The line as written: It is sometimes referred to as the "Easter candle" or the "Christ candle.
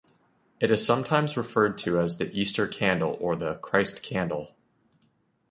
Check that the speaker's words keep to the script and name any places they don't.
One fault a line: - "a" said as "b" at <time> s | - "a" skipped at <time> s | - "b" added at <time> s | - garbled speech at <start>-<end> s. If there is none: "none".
none